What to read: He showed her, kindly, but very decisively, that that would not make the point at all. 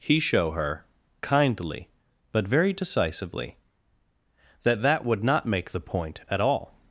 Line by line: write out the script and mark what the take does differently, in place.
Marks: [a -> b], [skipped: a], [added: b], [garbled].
He [showed -> show] her, kindly, but very decisively, that that would not make the point at all.